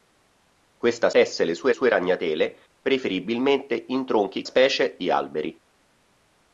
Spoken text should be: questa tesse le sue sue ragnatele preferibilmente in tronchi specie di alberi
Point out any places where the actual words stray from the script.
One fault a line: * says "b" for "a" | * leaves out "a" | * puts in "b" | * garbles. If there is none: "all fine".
all fine